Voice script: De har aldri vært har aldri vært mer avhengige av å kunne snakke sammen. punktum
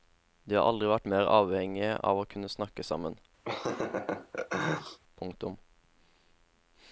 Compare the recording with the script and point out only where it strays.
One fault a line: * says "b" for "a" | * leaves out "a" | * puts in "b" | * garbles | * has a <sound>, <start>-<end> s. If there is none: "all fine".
* leaves out "har aldri vært"
* has a laugh, 3.4-5.0 s